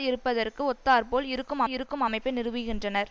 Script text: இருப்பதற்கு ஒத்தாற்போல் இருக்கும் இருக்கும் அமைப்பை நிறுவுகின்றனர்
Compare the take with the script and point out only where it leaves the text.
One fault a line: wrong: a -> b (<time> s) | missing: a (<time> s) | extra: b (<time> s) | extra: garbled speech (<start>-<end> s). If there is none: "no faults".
no faults